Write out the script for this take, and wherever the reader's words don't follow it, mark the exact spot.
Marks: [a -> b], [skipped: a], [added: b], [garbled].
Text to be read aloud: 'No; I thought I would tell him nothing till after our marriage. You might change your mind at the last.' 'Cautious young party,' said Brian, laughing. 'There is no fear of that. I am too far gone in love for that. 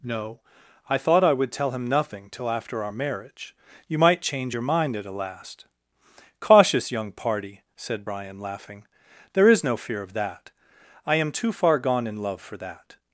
'No; I thought I would tell him nothing till after our marriage. You might change your mind at [the -> a] last.' 'Cautious young party,' said Brian, laughing. 'There is no fear of that. I am too far gone in love for that.